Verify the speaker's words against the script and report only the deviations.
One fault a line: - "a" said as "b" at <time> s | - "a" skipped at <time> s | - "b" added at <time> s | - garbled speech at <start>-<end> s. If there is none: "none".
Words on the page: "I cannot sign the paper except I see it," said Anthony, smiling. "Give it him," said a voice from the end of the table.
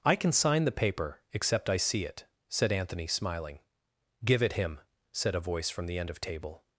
- "cannot" said as "can" at 0.1 s
- "the" skipped at 6.2 s